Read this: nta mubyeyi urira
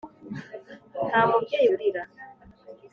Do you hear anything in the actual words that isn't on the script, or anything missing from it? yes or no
no